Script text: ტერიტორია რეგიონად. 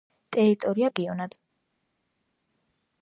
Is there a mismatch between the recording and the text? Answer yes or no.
no